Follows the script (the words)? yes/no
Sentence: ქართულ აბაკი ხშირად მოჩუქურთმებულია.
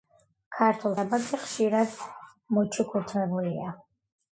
yes